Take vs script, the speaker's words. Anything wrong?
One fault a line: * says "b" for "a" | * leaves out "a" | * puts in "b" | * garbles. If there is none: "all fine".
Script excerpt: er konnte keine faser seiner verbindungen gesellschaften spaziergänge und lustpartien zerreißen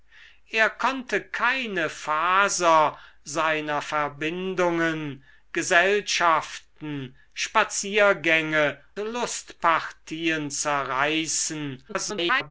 * leaves out "und"
* garbles